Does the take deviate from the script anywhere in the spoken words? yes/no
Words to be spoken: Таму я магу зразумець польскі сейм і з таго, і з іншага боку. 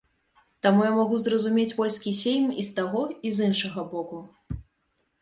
no